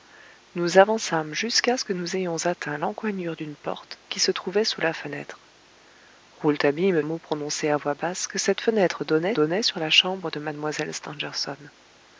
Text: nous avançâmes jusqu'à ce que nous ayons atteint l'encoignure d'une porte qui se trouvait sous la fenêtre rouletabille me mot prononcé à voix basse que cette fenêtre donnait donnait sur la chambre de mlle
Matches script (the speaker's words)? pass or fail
pass